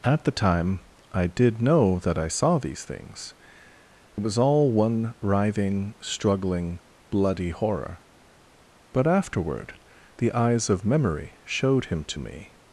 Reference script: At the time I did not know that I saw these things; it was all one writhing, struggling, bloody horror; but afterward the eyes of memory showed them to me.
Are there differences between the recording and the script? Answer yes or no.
yes